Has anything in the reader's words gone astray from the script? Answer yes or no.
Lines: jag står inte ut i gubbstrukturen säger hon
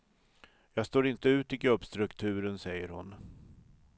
no